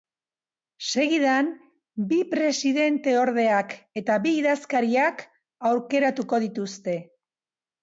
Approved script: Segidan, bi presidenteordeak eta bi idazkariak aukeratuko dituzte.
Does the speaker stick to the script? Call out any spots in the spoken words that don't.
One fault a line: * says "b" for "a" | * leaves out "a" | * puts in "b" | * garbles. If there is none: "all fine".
all fine